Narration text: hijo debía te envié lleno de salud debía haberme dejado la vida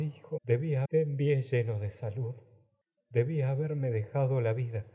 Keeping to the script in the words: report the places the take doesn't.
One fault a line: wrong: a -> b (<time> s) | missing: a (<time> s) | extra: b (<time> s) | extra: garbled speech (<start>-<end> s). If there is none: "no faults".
no faults